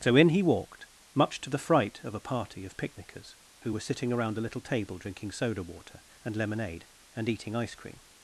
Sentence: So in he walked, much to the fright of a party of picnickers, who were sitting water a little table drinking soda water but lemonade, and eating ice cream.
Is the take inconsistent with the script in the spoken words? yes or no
yes